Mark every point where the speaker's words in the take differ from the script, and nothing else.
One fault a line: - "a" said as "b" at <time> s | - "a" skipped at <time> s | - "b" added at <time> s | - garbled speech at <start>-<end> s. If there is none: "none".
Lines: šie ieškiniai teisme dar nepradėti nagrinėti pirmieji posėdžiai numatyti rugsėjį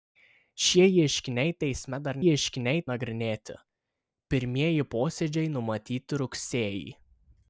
- "nepradėti" said as "ieškiniai" at 2.3 s